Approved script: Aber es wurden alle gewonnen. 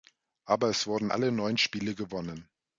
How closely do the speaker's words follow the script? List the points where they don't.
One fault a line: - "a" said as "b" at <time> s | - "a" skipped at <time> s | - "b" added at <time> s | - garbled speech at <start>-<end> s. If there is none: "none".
- "neun Spiele" added at 1.3 s